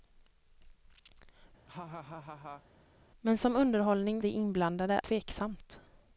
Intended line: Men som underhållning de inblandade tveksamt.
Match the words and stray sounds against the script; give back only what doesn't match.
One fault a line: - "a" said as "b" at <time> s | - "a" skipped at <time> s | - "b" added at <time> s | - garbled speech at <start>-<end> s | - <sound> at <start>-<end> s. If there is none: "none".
- laugh at 1.7-2.6 s